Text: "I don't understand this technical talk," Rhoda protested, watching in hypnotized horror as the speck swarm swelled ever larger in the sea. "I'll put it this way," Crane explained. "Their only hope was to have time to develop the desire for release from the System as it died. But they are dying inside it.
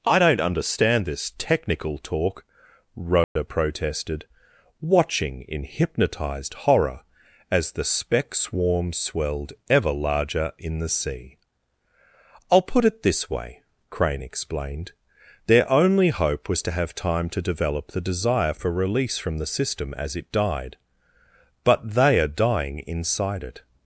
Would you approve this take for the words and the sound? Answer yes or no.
no